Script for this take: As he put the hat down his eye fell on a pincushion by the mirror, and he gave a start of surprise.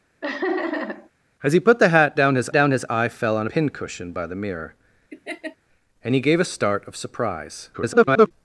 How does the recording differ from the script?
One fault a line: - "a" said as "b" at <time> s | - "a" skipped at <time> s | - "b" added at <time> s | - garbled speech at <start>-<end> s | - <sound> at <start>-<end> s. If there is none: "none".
- laugh at 0.2-1.1 s
- "down his" added at 2.5 s
- "a" skipped at 3.5 s
- laugh at 5.1-5.6 s
- garbled speech at 7.7-8.3 s